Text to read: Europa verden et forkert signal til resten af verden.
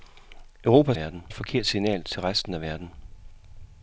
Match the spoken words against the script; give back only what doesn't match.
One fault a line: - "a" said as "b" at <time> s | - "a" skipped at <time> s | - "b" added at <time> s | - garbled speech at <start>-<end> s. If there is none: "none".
none